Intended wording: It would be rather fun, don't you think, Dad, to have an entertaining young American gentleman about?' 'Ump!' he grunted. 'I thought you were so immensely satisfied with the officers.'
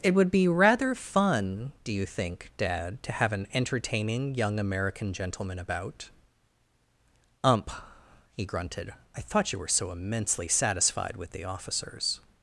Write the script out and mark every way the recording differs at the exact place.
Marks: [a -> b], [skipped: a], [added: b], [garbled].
It would be rather fun, [don't -> do] you think, Dad, to have an entertaining young American gentleman about?' 'Ump!' he grunted. 'I thought you were so immensely satisfied with the officers.'